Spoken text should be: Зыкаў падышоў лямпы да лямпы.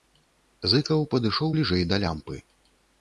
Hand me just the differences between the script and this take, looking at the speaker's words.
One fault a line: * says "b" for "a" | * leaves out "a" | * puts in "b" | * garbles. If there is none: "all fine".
* says "бліжэй" for "лямпы"